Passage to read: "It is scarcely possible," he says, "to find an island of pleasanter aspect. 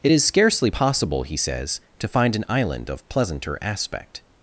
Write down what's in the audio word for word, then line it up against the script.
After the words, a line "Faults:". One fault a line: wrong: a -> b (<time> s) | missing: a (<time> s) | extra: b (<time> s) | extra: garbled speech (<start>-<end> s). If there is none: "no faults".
"It is scarcely possible," he says, "to find an island of pleasanter aspect.
Faults:
no faults